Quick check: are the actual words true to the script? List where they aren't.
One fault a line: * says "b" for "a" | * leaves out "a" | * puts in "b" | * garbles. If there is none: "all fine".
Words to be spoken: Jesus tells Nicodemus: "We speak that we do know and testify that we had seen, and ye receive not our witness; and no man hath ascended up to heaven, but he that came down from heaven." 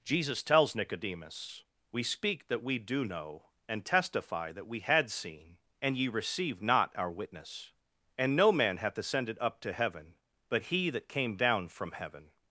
all fine